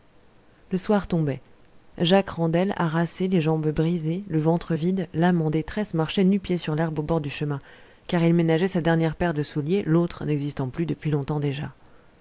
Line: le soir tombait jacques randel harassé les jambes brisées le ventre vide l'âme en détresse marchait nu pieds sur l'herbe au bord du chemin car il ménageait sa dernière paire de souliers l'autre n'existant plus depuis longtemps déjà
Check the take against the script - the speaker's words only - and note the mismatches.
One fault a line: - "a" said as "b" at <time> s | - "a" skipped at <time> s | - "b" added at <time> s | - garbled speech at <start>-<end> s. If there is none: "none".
none